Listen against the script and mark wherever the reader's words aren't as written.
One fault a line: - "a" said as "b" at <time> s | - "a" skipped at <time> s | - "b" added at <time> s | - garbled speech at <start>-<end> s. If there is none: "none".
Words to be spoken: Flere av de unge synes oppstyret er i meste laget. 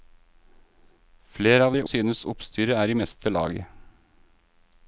- "unge" skipped at 1.8 s